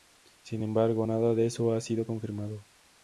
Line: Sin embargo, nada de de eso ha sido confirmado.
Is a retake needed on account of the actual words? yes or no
yes